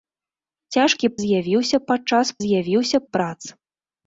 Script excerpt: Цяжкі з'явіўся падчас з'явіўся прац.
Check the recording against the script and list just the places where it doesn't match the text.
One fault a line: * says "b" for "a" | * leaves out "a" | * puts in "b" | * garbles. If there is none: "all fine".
all fine